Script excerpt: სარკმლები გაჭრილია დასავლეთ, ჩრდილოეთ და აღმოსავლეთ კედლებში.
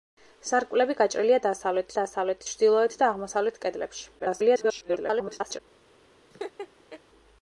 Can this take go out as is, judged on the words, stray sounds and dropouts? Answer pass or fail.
fail